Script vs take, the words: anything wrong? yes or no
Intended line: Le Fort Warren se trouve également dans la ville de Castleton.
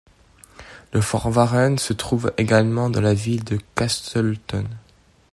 no